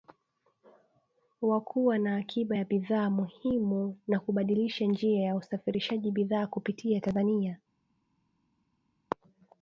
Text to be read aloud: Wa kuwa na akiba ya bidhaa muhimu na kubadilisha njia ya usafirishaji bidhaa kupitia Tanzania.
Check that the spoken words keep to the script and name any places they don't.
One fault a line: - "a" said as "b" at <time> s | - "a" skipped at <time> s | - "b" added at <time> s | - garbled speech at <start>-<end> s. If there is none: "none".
none